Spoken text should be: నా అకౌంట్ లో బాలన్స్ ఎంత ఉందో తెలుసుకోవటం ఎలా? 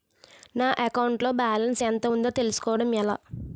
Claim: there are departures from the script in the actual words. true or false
false